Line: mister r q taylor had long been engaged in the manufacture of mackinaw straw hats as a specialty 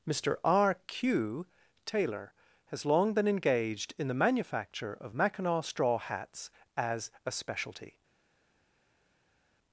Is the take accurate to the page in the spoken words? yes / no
no